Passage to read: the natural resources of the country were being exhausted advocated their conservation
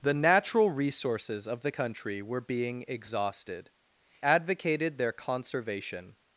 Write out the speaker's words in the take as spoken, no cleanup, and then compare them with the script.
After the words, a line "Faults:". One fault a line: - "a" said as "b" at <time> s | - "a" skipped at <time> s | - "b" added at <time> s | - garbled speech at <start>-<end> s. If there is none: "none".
the natural resources of the country were being exhausted advocated their conservation
Faults:
none